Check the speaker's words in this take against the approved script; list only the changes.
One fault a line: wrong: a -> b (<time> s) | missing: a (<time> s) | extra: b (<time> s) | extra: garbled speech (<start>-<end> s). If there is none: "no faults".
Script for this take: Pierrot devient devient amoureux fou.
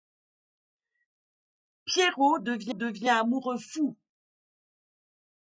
no faults